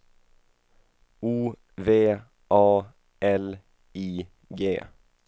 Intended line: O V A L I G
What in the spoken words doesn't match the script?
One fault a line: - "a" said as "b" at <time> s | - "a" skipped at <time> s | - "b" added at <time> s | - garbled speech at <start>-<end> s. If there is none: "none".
none